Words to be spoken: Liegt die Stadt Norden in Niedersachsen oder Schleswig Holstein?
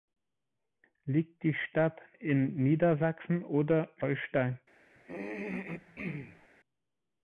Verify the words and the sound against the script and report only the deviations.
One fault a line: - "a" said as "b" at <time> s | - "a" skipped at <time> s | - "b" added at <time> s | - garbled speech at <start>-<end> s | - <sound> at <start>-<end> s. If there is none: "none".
- "Norden" skipped at 2.0 s
- "Schleswig" skipped at 3.9 s
- throat clearing at 5.0-6.5 s